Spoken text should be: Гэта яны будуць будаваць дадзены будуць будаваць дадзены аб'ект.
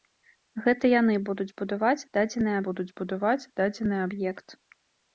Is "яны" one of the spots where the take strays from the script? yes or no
no